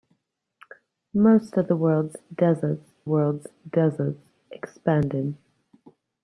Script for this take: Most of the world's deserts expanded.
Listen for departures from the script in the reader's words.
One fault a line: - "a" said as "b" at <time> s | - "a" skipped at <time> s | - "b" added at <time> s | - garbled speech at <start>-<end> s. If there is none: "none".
- "world's deserts" added at 3.0 s